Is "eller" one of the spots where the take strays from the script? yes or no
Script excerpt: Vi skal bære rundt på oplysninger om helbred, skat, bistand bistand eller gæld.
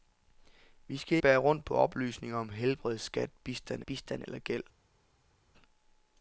no